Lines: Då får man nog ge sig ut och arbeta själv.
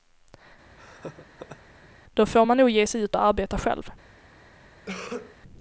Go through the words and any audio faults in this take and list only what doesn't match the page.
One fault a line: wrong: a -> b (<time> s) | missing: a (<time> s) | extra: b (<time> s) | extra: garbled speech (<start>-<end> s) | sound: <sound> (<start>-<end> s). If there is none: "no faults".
sound: laugh (0.8-1.9 s)
sound: cough (4.9-5.4 s)